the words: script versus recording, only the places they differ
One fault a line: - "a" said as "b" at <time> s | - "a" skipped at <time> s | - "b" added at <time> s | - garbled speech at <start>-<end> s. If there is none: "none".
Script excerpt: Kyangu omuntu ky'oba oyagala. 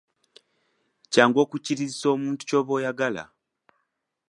- "okukkirizisa" added at 1.4 s